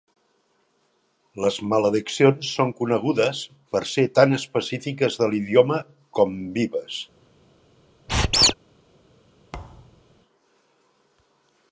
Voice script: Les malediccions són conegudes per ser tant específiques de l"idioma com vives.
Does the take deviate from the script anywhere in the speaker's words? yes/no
no